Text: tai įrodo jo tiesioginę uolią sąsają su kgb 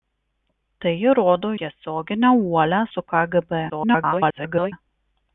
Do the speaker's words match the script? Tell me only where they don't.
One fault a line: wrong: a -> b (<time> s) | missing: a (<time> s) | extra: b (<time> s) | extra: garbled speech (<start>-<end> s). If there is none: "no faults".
missing: jo (1.5 s)
missing: sąsają (2.8 s)
extra: garbled speech (3.7-4.7 s)